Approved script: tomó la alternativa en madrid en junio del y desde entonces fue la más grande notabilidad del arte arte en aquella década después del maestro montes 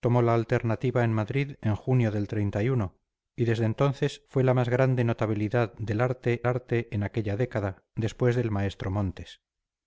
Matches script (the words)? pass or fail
pass